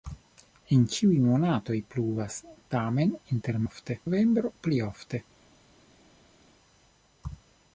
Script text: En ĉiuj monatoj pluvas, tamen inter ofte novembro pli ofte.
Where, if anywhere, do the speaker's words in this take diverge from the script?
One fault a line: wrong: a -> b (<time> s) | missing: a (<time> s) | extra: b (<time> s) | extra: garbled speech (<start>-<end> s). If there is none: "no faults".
no faults